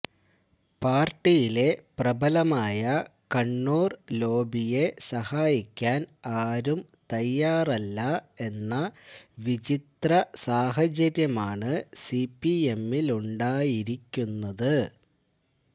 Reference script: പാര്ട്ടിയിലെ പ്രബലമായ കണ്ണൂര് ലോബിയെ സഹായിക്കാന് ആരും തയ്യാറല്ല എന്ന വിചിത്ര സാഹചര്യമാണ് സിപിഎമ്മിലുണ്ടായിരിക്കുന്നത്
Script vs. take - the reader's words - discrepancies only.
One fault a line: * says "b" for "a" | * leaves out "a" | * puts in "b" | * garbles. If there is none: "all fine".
all fine